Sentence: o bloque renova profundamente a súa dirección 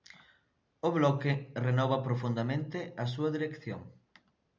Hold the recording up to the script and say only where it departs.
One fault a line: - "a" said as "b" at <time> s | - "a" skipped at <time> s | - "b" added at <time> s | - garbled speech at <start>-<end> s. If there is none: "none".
none